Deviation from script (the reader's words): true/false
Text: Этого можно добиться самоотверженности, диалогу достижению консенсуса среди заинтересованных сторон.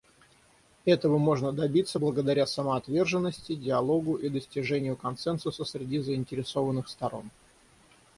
true